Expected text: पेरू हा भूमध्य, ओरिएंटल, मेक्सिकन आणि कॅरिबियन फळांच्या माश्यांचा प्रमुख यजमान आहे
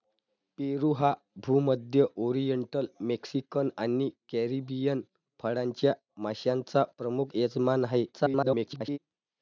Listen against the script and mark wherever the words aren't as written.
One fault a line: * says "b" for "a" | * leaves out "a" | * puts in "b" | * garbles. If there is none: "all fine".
* garbles